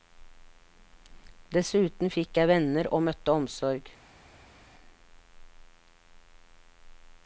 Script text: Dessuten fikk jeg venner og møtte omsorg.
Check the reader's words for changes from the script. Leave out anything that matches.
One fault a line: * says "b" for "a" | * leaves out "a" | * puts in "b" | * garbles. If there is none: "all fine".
all fine